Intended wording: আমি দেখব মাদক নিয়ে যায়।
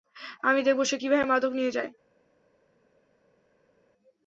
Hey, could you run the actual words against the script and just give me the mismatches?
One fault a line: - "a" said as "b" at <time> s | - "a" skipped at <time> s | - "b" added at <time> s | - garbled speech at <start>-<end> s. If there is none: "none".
- "সে কীভাবে" added at 0.8 s